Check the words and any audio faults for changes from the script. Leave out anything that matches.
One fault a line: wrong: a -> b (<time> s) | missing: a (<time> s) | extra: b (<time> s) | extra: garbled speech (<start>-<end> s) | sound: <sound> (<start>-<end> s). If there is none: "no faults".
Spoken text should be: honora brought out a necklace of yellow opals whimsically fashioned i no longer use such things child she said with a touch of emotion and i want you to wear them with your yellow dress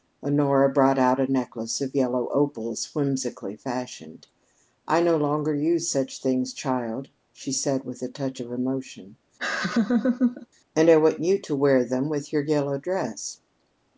sound: laugh (9.4-10.5 s)